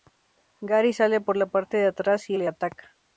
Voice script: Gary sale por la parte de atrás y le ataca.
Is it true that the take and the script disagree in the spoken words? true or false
false